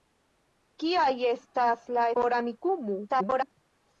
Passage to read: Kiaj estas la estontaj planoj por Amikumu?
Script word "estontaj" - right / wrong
wrong